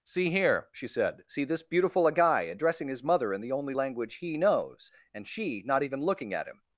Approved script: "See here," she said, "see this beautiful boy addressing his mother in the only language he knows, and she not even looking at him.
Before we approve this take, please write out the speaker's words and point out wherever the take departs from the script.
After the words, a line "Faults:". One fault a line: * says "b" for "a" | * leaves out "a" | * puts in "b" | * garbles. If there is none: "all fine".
"See here," she said, "see this beautiful agai addressing his mother in the only language he knows, and she not even looking at him.
Faults:
* says "agai" for "boy"